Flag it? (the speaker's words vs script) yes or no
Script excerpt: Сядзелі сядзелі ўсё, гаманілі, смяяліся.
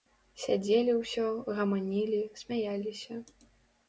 yes